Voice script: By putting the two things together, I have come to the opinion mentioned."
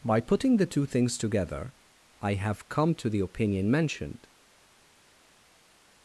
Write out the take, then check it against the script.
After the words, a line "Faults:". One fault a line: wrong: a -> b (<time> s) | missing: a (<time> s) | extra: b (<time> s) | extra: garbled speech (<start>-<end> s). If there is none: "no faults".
By putting the two things together, I have come to the opinion mentioned."
Faults:
no faults